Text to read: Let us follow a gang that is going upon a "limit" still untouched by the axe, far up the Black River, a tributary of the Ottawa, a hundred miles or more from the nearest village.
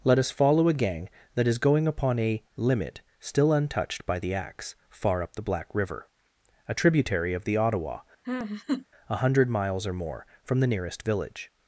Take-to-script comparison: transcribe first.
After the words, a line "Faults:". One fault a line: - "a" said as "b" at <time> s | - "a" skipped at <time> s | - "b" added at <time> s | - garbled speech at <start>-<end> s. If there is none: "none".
Let us follow a gang that is going upon a "limit" still untouched by the axe, far up the Black River, a tributary of the Ottawa, a hundred miles or more from the nearest village.
Faults:
none